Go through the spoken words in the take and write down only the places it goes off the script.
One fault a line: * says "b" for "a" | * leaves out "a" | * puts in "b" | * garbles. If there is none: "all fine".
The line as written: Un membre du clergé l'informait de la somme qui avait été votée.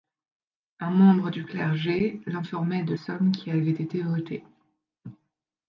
* leaves out "la"